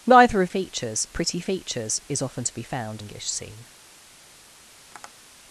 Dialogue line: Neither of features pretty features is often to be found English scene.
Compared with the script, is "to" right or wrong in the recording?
right